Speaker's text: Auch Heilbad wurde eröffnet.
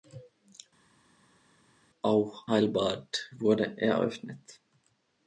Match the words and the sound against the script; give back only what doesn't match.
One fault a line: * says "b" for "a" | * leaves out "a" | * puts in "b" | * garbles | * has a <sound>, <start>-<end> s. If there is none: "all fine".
all fine